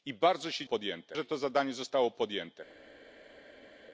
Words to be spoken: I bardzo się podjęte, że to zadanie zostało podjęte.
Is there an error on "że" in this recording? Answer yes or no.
no